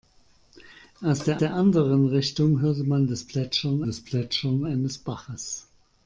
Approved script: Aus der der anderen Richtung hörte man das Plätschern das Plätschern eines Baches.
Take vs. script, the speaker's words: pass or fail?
pass